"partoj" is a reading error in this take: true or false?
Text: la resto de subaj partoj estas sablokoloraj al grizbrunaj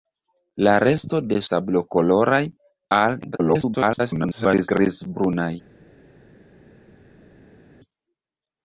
true